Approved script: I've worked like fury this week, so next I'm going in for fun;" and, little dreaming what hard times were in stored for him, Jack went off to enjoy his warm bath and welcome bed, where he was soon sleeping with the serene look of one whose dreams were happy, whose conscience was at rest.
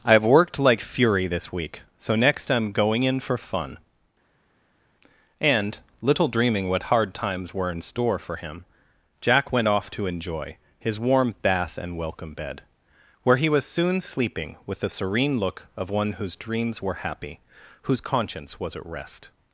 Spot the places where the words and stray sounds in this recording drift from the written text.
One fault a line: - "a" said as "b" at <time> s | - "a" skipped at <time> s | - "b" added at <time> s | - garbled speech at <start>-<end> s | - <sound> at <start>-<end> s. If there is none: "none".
- "stored" said as "store" at 7.8 s